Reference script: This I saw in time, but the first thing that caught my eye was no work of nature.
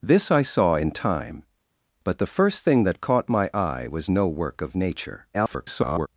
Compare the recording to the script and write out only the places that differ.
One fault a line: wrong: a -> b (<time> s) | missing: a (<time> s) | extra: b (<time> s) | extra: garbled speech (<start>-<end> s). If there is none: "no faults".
extra: garbled speech (5.3-6.1 s)